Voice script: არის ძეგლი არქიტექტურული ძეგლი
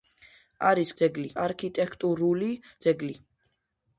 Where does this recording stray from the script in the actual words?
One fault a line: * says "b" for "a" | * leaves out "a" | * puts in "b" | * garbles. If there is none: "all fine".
all fine